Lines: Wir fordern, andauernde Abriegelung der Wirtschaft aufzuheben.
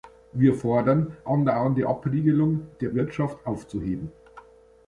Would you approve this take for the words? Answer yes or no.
yes